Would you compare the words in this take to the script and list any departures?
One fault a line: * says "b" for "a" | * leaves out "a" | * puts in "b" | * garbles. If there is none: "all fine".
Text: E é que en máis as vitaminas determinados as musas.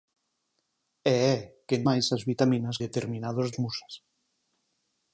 all fine